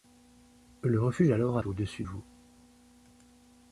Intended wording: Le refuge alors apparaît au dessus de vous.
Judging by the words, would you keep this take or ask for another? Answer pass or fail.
fail